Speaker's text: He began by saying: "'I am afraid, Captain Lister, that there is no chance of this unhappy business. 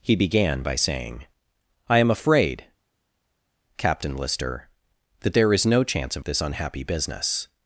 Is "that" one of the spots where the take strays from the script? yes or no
no